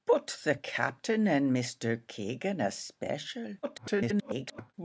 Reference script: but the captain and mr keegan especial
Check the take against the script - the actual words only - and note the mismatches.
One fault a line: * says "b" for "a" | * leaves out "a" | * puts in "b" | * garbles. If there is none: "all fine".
* garbles